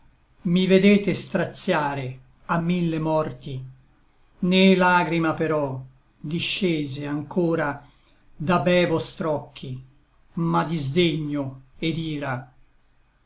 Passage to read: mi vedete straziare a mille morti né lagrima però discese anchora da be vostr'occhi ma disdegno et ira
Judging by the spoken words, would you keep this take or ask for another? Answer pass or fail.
pass